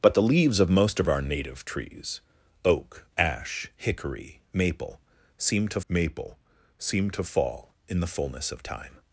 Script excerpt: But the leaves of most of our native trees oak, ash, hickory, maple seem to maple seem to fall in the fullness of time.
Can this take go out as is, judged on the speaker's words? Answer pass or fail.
pass